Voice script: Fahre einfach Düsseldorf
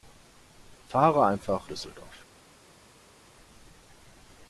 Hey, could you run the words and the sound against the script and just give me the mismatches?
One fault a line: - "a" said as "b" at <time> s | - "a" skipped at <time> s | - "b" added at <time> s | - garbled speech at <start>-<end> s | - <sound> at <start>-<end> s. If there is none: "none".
none